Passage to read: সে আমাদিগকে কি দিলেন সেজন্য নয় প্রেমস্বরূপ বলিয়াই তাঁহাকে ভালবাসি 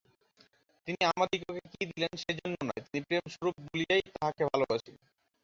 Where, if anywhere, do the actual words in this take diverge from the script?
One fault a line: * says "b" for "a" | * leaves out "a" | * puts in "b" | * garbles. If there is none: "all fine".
* says "তিনি" for "সে"
* puts in "তিনি"